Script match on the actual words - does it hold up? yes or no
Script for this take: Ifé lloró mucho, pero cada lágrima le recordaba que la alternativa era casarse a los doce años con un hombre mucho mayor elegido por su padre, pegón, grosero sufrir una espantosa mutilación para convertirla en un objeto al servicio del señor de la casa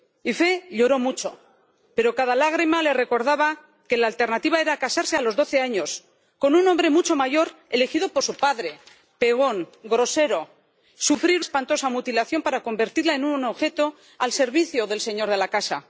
no